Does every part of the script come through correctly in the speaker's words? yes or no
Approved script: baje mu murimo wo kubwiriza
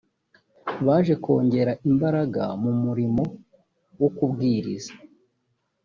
no